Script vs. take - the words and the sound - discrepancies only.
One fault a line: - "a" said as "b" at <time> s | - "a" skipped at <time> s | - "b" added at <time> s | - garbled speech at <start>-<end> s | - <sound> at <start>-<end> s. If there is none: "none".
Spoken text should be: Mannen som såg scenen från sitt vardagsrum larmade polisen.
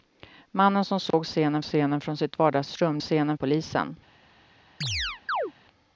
- dropout at 1.1-1.1 s
- "scenen" added at 1.6 s
- "larmade" said as "scenen" at 3.0 s
- chirp at 4.8-5.5 s